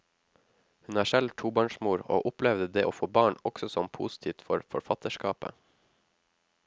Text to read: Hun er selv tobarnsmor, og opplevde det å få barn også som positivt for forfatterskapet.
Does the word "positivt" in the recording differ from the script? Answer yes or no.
no